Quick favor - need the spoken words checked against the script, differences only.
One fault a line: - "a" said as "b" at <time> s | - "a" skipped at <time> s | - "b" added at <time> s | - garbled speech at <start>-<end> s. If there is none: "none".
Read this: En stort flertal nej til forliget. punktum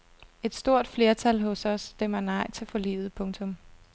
- "En" said as "Et" at 0.4 s
- "hos os stemmer" added at 1.4 s